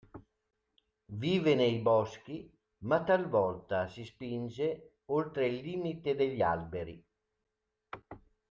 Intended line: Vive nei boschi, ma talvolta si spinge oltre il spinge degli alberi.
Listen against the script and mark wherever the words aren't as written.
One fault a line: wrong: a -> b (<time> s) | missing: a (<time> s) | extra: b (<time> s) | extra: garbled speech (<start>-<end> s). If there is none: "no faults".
wrong: spinge -> limite (5.6 s)